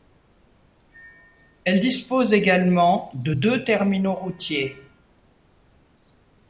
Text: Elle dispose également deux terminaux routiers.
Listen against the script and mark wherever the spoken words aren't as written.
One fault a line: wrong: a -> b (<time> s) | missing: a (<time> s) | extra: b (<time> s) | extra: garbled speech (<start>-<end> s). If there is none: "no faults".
extra: de (3.1 s)